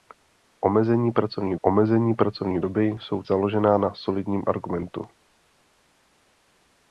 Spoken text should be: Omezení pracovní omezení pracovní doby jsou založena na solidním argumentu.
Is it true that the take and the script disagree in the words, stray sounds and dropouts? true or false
false